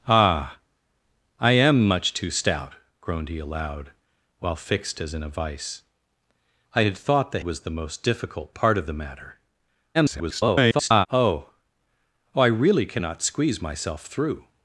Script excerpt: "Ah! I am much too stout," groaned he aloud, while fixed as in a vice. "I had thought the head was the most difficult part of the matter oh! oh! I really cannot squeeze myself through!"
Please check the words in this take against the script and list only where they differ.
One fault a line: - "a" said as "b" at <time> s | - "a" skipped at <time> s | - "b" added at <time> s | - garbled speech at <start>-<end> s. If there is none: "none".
- "head" skipped at 7.4 s
- garbled speech at 9.9-11.1 s